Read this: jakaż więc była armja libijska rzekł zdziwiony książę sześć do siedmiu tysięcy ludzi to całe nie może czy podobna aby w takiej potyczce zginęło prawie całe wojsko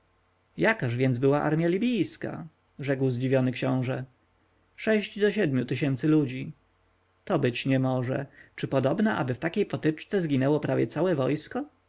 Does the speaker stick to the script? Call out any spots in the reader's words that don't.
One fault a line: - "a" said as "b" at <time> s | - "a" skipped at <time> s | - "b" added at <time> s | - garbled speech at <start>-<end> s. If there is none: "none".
- "całe" said as "być" at 7.4 s